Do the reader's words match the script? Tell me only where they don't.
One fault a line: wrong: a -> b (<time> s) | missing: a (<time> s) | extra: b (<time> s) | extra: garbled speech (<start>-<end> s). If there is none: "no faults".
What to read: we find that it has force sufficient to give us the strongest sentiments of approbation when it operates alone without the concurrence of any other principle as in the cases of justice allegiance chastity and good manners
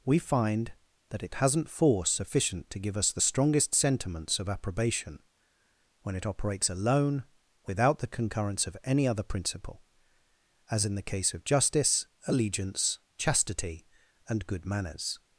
wrong: has -> hasn't (1.4 s)
wrong: cases -> case (11.0 s)